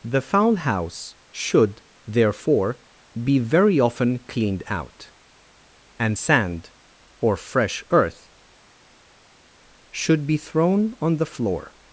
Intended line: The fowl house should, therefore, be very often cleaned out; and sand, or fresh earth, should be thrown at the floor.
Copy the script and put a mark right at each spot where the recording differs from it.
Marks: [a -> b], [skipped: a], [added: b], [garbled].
The fowl house should, therefore, be very often cleaned out; and sand, or fresh earth, should be thrown [at -> on] the floor.